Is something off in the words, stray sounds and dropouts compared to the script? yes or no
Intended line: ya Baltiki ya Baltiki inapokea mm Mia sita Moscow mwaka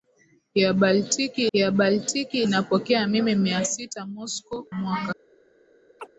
yes